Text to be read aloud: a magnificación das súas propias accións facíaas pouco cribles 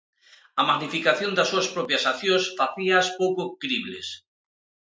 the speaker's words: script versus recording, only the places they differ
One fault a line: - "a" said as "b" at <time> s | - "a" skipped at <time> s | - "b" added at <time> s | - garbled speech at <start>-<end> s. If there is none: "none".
none